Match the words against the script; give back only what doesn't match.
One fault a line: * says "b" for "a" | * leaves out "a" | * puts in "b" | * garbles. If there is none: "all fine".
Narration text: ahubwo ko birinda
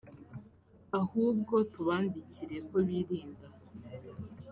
* puts in "tubandikire"